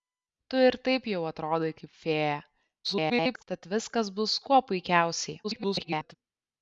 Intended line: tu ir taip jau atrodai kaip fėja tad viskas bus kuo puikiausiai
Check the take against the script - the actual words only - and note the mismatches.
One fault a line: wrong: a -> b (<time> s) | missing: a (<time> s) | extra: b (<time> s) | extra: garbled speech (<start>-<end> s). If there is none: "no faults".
extra: garbled speech (2.8-3.4 s)
extra: garbled speech (5.4-6.2 s)